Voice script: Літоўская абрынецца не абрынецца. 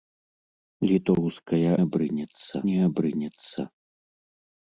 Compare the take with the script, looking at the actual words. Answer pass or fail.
pass